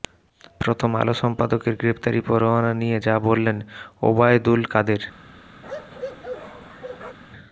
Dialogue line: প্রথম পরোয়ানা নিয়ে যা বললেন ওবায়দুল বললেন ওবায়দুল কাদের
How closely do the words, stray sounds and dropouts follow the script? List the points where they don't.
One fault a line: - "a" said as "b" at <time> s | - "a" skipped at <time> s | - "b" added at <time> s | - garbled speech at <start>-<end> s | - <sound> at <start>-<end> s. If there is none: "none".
- "আলো সম্পাদকের গ্রেফতারি" added at 0.9 s
- "বললেন ওবায়দুল" skipped at 4.6 s
- bark at 5.6-7.2 s